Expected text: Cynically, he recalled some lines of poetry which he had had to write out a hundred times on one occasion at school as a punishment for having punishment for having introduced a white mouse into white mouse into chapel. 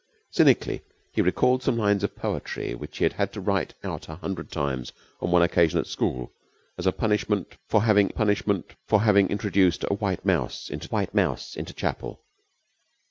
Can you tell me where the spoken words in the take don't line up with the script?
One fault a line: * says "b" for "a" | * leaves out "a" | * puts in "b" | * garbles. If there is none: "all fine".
all fine